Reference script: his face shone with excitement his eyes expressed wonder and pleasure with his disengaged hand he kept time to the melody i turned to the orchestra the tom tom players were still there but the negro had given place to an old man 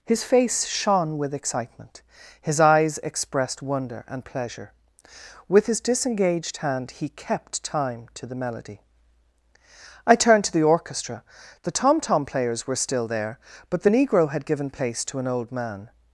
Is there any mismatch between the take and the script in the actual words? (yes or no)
no